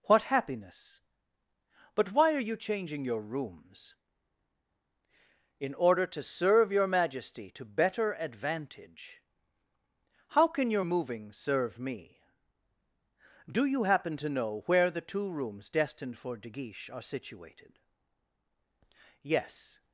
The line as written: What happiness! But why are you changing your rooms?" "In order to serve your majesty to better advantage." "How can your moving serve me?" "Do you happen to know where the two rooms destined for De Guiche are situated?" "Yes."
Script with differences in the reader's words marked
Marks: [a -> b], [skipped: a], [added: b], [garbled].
What happiness! But why are you changing your rooms?" "In order to serve your majesty to better advantage." "How can your moving serve me?" "Do you happen to know where the two rooms destined for De Guiche are situated?" "Yes."